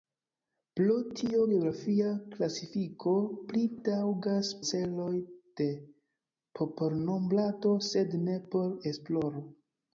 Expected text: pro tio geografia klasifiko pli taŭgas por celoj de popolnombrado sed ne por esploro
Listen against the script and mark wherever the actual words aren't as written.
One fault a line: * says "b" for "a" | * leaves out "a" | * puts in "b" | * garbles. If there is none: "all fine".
* leaves out "por"